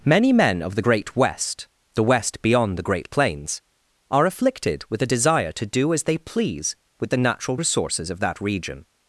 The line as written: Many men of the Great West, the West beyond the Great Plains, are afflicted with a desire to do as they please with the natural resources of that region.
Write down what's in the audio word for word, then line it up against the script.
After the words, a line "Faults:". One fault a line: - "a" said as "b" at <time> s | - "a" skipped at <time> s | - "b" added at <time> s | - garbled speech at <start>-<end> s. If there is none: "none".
Many men of the Great West, the West beyond the Great Plains, are afflicted with a desire to do as they please with the natural resources of that region.
Faults:
none